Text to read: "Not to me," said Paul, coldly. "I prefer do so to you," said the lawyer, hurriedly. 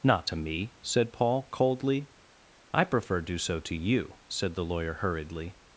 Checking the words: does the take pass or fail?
pass